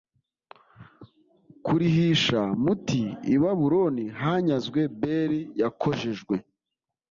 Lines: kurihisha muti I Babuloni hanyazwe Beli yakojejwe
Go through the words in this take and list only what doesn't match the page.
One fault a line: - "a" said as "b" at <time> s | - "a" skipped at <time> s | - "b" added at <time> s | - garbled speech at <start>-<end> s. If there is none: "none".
none